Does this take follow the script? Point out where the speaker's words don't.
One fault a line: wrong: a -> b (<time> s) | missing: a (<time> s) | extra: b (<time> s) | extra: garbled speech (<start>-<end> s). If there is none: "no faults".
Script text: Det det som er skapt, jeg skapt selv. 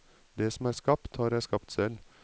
missing: det (0.5 s)
extra: har (1.2 s)